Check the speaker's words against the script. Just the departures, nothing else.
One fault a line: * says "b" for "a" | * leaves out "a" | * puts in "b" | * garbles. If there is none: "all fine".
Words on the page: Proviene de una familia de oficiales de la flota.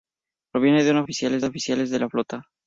* says "oficiales" for "familia"